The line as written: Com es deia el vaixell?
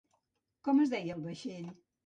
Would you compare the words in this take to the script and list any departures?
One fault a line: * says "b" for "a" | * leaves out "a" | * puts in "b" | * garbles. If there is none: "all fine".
all fine